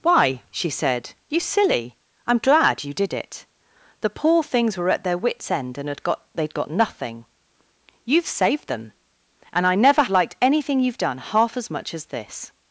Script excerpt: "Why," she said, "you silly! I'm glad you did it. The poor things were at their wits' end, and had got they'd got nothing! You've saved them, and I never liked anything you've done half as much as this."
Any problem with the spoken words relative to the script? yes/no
no